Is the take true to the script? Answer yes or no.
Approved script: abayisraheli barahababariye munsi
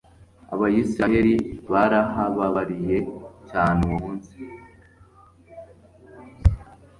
no